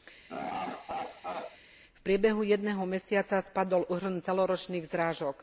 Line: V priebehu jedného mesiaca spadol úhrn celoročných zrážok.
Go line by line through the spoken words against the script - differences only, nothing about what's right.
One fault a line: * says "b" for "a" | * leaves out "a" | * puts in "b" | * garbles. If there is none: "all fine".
all fine